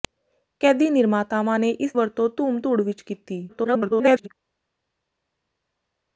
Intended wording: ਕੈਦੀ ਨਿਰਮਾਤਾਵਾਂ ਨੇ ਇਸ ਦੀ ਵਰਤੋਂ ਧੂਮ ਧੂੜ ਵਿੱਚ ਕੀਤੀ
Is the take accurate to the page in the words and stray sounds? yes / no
no